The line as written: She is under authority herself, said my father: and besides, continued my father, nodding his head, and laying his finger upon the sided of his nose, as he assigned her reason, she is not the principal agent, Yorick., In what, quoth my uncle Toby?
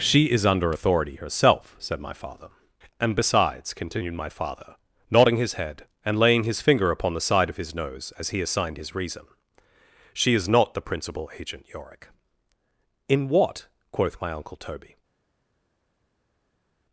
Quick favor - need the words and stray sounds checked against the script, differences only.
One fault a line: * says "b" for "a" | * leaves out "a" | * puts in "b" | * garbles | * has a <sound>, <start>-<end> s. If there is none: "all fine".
* says "side" for "sided"
* says "his" for "her"